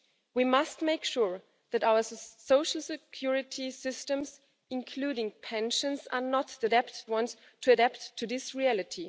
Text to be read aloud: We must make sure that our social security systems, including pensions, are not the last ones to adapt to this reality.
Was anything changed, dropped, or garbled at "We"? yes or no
no